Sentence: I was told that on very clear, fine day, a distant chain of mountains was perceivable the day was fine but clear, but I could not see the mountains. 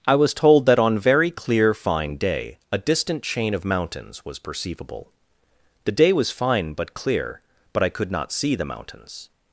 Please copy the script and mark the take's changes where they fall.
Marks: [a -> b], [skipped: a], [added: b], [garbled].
I was told that on very clear, fine day, a distant chain of mountains was perceivable the day was fine but clear, but I could not see the mountains.